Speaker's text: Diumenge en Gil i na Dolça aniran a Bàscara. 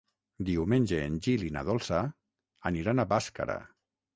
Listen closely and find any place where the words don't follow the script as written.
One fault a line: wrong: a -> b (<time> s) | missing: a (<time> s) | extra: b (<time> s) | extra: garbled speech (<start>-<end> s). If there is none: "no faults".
no faults